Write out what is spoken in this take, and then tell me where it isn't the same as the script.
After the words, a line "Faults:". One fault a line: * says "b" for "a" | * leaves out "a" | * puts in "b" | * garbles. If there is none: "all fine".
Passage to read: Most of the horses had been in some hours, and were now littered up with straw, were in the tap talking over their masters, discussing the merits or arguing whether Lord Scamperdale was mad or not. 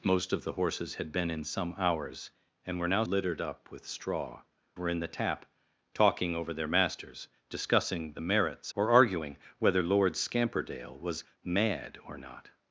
Most of the horses had been in some hours, and were now littered up with straw, were in the tap talking over their masters, discussing the merits or arguing whether Lord Scamperdale was mad or not.
Faults:
all fine